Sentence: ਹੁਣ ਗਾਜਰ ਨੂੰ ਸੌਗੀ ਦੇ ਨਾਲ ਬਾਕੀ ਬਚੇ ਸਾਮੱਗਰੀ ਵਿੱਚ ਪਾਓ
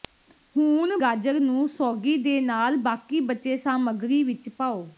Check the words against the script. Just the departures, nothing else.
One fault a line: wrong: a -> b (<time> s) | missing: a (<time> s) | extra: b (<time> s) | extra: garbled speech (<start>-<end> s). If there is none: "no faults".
no faults